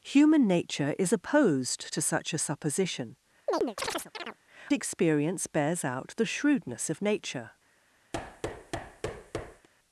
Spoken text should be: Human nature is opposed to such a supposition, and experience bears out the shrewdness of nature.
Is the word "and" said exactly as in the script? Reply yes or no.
no